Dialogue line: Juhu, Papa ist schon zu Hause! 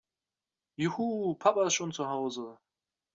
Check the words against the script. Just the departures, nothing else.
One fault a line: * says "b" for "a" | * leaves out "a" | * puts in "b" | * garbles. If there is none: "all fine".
all fine